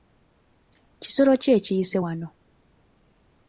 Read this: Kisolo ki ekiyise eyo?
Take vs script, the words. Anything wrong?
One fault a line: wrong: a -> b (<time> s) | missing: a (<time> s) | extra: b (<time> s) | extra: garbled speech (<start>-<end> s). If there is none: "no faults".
wrong: eyo -> wano (2.0 s)